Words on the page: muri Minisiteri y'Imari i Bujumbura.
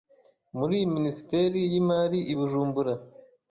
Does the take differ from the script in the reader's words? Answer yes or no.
no